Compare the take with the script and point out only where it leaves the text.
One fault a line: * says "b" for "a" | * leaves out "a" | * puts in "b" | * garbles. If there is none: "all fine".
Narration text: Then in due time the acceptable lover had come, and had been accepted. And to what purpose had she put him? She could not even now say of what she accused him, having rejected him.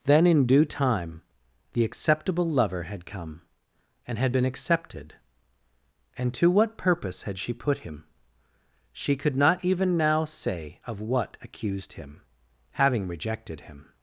* leaves out "she"